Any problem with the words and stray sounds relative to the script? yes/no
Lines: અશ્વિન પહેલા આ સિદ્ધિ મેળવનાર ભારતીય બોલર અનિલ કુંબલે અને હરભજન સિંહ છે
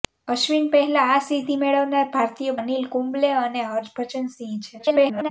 yes